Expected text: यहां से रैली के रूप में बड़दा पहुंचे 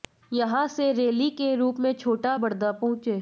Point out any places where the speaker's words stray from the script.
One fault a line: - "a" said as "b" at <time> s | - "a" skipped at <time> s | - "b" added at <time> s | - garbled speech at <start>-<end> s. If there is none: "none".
- "छोटा" added at 1.9 s